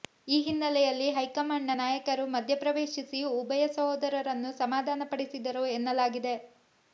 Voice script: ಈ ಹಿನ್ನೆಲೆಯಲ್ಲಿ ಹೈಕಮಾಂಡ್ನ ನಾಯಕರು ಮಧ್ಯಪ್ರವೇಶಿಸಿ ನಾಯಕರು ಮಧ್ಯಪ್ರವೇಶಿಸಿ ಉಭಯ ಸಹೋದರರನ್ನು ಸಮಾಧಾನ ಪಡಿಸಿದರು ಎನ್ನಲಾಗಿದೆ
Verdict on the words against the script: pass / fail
fail